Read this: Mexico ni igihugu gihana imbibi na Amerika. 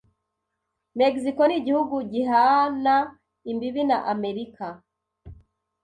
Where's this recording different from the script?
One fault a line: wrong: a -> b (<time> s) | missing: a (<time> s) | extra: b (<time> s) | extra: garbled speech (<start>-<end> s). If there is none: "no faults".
no faults